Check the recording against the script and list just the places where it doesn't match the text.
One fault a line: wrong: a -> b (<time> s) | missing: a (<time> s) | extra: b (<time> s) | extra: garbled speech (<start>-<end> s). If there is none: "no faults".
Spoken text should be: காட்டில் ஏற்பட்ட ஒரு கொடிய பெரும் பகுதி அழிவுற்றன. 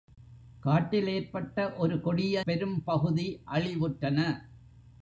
no faults